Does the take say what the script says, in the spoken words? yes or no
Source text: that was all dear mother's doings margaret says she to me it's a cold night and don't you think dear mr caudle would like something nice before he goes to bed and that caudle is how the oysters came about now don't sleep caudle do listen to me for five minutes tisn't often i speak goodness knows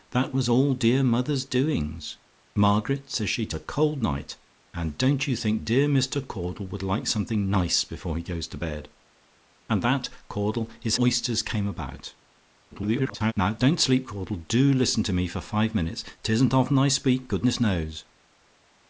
no